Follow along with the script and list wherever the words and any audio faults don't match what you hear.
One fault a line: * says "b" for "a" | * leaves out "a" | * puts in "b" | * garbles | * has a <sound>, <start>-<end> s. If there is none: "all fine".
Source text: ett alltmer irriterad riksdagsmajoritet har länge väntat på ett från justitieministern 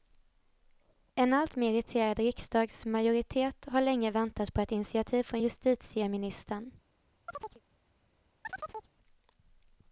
* says "en" for "ett"
* puts in "initiativ"
* has a chirp, 7.3-7.6 s
* has a chirp, 8.4-8.9 s